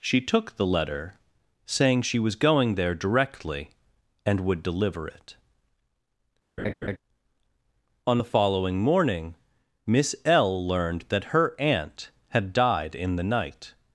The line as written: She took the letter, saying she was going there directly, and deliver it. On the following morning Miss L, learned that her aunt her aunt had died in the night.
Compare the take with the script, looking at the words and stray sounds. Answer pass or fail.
fail